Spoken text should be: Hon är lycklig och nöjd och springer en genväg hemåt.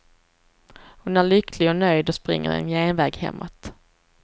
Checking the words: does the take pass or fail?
pass